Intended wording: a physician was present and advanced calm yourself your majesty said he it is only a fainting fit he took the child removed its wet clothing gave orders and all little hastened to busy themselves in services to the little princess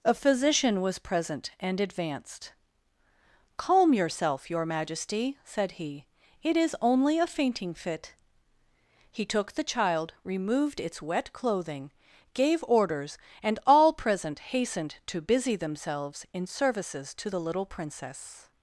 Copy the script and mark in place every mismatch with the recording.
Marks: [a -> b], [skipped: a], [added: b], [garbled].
a physician was present and advanced calm yourself your majesty said he it is only a fainting fit he took the child removed its wet clothing gave orders and all [little -> present] hastened to busy themselves in services to the little princess